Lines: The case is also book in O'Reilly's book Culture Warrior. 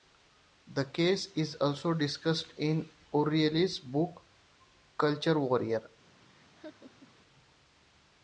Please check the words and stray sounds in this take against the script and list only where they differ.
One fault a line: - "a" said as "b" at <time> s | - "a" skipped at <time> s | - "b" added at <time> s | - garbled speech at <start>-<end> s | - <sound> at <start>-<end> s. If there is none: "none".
- "book" said as "discussed" at 1.9 s
- laugh at 6.3-7.2 s